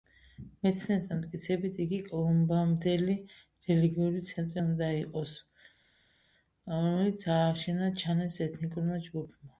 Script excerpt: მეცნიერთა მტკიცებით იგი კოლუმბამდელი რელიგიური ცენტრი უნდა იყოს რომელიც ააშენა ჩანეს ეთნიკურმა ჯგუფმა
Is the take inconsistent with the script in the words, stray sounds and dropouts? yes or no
no